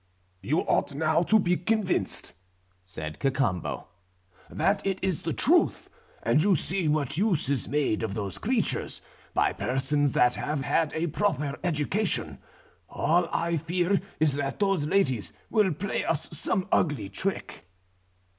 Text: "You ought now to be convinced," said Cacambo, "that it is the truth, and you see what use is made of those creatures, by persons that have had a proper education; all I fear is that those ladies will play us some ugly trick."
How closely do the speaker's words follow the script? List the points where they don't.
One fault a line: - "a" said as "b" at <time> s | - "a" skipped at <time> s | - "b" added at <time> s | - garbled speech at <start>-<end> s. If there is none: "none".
none